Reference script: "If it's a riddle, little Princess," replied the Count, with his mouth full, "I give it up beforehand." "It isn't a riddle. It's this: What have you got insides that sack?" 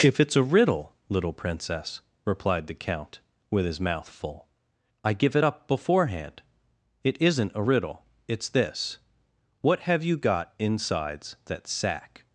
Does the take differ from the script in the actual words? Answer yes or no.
no